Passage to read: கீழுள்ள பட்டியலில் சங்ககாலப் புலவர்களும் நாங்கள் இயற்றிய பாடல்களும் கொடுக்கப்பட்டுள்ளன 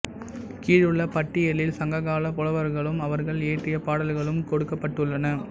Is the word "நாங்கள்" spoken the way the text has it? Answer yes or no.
no